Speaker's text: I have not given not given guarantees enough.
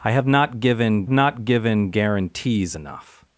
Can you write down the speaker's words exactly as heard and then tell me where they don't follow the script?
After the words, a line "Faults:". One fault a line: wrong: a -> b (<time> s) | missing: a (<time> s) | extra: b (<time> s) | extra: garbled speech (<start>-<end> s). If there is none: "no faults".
I have not given not given guarantees enough.
Faults:
no faults